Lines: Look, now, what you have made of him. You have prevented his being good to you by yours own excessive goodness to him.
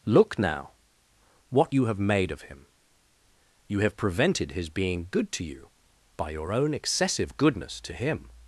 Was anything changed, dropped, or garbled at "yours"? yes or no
yes